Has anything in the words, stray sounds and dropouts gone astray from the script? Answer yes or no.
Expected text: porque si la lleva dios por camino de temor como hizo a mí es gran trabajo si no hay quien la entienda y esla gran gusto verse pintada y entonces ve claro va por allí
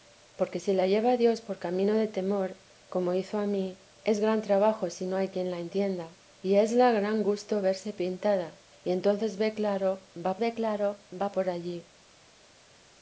yes